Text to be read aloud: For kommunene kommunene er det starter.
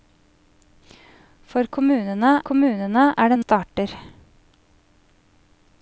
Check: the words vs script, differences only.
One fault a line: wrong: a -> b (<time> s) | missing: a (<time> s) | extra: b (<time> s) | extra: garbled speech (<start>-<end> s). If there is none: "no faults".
no faults